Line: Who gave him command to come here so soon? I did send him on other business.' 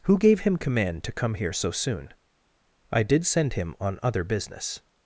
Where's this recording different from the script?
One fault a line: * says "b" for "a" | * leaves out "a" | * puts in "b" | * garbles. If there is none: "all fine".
all fine